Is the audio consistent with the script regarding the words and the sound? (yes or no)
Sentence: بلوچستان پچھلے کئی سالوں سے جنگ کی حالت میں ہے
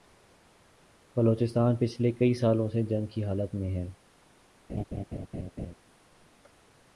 no